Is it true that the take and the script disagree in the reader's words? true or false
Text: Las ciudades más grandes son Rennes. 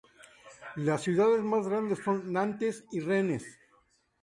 true